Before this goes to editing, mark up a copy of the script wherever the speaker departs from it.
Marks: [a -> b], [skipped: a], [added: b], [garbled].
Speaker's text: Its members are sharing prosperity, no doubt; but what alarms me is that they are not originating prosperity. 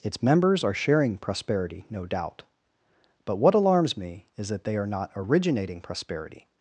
Its members are sharing prosperity, no doubt; but what alarms me is that they are not originating prosperity.